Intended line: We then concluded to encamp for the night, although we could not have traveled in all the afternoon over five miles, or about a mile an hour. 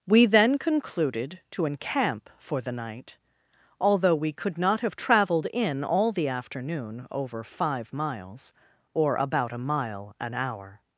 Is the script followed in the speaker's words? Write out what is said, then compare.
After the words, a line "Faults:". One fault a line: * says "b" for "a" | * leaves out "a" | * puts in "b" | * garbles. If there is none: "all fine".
We then concluded to encamp for the night, although we could not have traveled in all the afternoon over five miles, or about a mile an hour.
Faults:
all fine